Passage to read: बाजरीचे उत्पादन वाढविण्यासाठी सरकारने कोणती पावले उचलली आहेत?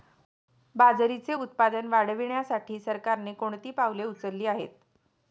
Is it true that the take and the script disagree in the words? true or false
false